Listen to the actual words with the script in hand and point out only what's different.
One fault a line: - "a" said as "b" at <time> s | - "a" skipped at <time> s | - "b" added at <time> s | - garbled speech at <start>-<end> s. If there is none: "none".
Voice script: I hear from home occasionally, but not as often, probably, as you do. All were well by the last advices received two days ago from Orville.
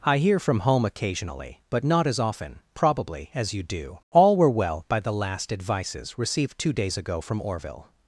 none